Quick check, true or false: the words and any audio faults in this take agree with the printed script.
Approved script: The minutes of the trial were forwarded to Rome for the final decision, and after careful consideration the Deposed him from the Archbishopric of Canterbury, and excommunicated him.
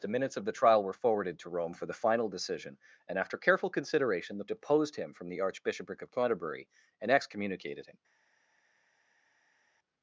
true